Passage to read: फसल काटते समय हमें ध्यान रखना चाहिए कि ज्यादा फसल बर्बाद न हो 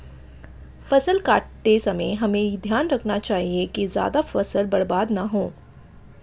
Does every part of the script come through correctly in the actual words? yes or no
yes